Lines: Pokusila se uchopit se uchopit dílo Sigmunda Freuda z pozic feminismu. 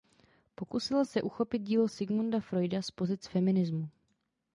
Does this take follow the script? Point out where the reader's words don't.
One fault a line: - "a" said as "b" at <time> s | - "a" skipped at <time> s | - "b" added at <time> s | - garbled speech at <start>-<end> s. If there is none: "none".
- "se uchopit" skipped at 1.6 s